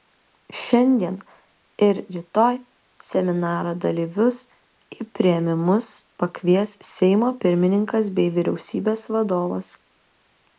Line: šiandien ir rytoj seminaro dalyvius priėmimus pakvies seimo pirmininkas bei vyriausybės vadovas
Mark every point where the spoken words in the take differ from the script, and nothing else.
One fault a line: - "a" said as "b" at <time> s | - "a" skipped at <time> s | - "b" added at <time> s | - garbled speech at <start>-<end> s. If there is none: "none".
- "į" added at 5.0 s